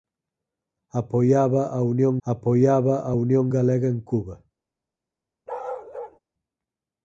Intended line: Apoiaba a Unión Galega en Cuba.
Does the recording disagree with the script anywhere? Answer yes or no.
yes